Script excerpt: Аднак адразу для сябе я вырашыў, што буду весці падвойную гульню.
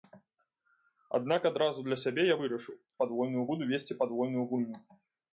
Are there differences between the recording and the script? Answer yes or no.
yes